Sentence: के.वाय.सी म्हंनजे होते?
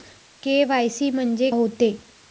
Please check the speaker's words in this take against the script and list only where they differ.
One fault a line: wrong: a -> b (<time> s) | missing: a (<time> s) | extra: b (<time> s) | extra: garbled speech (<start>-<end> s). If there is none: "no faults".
no faults